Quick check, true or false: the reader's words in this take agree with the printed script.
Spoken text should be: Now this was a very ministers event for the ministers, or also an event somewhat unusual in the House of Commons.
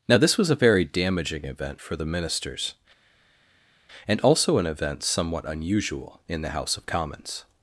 false